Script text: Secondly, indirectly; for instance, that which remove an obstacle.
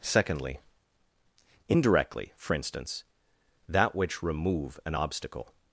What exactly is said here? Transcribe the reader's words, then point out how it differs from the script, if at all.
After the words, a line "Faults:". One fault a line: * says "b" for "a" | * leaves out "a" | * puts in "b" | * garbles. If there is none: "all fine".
Secondly, indirectly; for instance, that which remove an obstacle.
Faults:
all fine